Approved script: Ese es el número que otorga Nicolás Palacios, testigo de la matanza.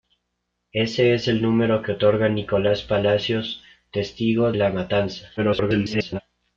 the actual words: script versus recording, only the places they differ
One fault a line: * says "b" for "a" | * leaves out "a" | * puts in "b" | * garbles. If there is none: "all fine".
* leaves out "de"
* garbles